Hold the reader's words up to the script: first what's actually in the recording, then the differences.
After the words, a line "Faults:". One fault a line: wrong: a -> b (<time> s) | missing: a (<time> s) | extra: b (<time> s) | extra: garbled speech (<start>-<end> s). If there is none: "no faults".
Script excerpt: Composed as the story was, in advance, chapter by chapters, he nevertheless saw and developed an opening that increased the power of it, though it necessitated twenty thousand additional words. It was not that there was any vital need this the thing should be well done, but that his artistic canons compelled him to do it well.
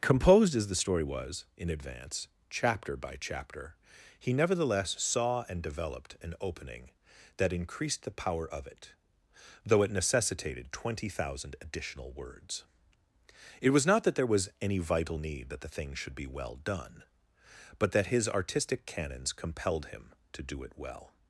Composed as the story was, in advance, chapter by chapter, he nevertheless saw and developed an opening that increased the power of it, though it necessitated twenty thousand additional words. It was not that there was any vital need that the thing should be well done, but that his artistic canons compelled him to do it well.
Faults:
wrong: chapters -> chapter (3.2 s)
wrong: this -> that (15.5 s)